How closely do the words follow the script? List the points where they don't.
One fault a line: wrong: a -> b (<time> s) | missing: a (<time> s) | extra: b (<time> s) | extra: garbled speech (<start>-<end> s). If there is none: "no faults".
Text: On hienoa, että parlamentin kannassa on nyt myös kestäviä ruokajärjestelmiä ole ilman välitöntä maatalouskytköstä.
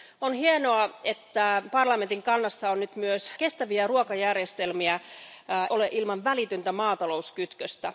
no faults